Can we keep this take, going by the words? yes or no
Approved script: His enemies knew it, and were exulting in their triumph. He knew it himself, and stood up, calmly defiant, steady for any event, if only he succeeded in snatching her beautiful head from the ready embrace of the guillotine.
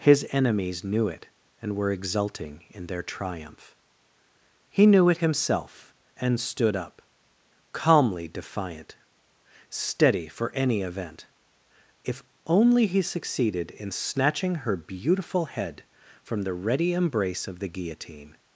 yes